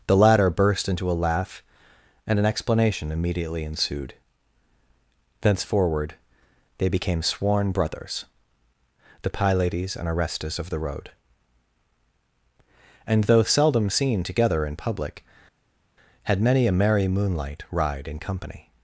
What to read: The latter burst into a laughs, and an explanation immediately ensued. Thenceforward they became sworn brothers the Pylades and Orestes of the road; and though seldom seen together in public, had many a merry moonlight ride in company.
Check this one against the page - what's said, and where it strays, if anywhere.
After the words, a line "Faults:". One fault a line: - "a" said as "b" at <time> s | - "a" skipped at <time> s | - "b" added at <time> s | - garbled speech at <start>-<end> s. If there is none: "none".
The latter burst into a laugh, and an explanation immediately ensued. Thenceforward they became sworn brothers the Pylades and Orestes of the road; and though seldom seen together in public, had many a merry moonlight ride in company.
Faults:
- "laughs" said as "laugh" at 1.2 s